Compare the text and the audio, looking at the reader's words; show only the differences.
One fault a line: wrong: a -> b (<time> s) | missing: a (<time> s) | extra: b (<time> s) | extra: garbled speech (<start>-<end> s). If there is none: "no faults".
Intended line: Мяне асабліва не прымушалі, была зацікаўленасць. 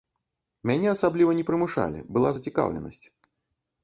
no faults